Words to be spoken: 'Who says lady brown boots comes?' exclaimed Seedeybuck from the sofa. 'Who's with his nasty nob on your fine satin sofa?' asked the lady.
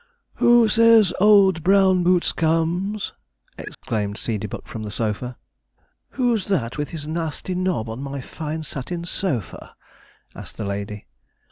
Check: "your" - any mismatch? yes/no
yes